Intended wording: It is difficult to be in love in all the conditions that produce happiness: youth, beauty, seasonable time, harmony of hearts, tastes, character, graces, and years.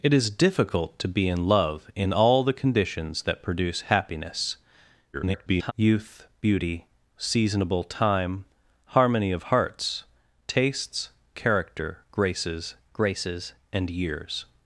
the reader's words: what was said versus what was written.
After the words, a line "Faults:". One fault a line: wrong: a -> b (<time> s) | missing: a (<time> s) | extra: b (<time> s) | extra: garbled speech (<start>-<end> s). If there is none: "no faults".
It is difficult to be in love in all the conditions that produce happiness: [garbled] youth, beauty, seasonable time, harmony of hearts, tastes, character, graces graces, and years.
Faults:
extra: garbled speech (5.1-5.7 s)
extra: graces (12.9 s)